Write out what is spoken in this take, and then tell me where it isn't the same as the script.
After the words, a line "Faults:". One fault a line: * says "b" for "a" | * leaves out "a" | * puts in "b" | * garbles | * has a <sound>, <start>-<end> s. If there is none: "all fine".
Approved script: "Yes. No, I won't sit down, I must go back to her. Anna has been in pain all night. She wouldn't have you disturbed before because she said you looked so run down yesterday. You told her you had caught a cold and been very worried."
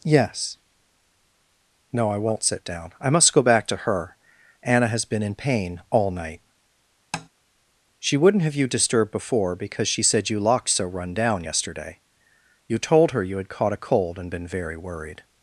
"Yes. No, I won't sit down, I must go back to her. Anna has been in pain all night. She wouldn't have you disturbed before because she said you locked so run down yesterday. You told her you had caught a cold and been very worried."
Faults:
* has a tap, 7.1-7.3 s
* says "locked" for "looked"